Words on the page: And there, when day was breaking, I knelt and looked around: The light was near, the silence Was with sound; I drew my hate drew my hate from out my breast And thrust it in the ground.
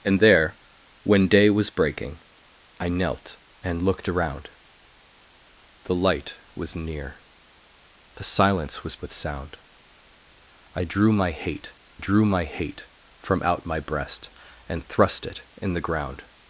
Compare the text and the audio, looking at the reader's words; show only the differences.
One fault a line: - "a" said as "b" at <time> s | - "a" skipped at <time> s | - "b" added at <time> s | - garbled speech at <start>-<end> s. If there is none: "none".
none